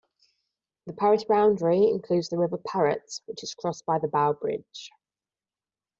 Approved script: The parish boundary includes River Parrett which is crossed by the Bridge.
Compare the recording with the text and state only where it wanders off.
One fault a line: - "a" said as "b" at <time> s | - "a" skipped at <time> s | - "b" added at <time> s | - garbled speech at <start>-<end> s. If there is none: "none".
- "the" added at 2.3 s
- "Bow" added at 4.1 s